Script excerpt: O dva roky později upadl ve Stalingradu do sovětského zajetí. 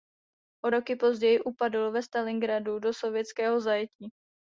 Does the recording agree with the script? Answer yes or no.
no